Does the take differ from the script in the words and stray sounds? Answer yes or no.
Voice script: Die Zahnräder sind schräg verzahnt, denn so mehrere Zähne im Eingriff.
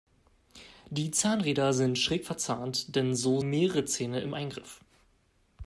no